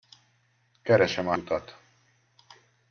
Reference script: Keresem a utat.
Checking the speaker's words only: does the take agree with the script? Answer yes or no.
yes